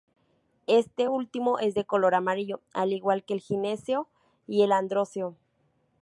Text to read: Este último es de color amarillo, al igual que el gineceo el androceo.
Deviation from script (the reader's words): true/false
true